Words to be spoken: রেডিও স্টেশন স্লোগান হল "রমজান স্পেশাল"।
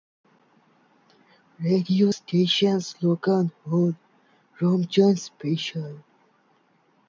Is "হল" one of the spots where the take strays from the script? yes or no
no